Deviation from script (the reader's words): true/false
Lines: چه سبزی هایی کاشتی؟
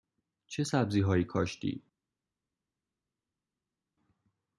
false